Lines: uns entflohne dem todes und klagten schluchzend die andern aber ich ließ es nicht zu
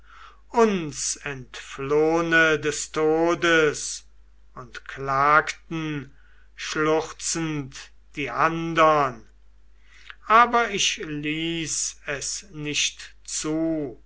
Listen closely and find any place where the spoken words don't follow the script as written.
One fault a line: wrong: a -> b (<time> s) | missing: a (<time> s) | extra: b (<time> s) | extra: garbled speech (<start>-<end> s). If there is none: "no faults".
wrong: dem -> des (2.6 s)